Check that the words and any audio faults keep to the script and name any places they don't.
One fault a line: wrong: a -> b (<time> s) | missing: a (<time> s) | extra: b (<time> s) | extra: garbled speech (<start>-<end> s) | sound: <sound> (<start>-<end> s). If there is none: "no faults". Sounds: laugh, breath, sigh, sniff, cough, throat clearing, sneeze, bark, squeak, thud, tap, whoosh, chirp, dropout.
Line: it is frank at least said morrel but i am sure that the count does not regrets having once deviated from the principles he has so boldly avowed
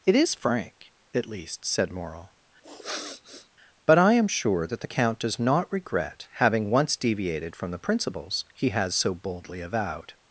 sound: sniff (2.6-3.5 s)
wrong: regrets -> regret (5.7 s)